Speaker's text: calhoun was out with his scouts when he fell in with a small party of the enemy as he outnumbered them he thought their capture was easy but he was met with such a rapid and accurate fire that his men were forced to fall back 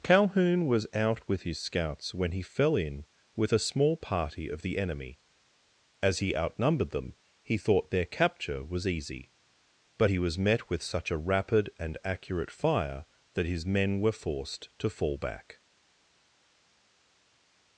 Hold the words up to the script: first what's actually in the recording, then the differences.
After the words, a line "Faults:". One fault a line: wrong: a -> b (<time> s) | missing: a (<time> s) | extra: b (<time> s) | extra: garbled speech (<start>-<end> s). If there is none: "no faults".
calhoun was out with his scouts when he fell in with a small party of the enemy as he outnumbered them he thought their capture was easy but he was met with such a rapid and accurate fire that his men were forced to fall back
Faults:
no faults